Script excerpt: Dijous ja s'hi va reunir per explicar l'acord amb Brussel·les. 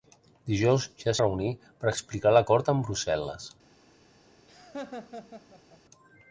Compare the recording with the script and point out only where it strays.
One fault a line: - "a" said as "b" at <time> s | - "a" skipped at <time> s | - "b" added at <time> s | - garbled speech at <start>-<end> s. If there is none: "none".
- "s'hi va" skipped at 1.1 s